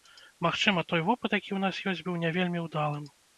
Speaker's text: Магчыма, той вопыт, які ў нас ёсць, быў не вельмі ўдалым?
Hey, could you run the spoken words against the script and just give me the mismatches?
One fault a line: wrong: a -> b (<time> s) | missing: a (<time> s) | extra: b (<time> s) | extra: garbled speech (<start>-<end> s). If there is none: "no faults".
no faults